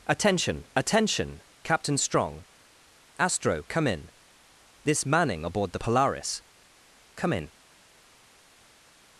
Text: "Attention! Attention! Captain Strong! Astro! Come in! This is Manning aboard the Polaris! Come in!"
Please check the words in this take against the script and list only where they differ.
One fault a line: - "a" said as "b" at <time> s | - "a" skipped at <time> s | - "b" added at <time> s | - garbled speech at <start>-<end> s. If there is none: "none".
- "is" skipped at 5.0 s